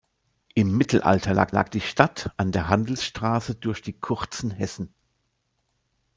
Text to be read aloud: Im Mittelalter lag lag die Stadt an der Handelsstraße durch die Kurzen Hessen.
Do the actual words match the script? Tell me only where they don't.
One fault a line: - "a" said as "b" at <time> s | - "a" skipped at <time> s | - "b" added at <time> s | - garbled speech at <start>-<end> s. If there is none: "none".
none